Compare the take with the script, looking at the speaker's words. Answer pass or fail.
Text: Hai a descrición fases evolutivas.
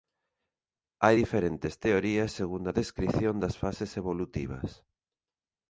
fail